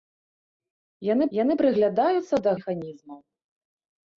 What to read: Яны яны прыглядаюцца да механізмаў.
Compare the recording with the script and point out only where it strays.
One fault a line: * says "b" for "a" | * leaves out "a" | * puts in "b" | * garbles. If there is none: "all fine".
all fine